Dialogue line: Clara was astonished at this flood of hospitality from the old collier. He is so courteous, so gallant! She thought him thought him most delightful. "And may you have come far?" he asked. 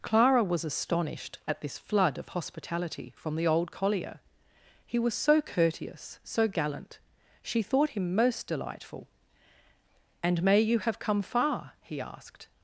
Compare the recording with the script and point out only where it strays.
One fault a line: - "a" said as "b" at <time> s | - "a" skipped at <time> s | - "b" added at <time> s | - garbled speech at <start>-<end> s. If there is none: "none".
- "is" said as "was" at 5.0 s
- "thought him" skipped at 8.1 s